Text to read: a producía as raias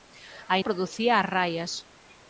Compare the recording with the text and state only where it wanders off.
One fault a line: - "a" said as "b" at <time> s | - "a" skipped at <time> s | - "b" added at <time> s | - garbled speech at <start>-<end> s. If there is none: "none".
none